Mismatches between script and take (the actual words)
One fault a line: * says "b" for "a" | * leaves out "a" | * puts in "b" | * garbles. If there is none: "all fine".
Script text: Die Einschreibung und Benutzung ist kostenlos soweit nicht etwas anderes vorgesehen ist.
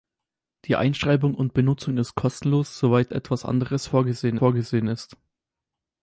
* leaves out "nicht"
* puts in "vorgesehen"